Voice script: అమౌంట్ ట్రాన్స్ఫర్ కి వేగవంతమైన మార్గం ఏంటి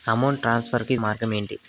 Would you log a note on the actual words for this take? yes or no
yes